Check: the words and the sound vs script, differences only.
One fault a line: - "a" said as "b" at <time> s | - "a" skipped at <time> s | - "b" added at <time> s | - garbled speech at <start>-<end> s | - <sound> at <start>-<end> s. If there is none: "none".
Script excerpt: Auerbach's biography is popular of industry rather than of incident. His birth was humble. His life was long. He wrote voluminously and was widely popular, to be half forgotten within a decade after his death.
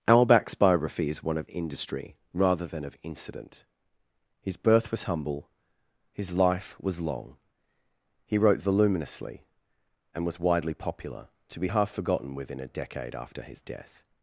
- "popular" said as "one" at 1.2 s